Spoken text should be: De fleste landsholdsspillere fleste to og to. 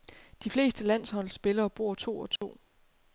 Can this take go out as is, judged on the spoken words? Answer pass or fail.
fail